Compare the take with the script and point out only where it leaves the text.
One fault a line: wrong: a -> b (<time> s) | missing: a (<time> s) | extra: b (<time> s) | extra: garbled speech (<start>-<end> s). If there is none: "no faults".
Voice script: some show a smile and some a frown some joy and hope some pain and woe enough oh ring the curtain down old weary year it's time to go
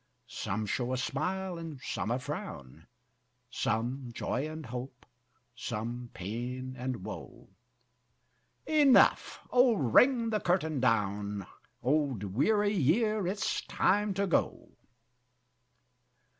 no faults